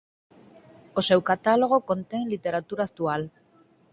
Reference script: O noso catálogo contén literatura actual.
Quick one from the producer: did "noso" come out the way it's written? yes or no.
no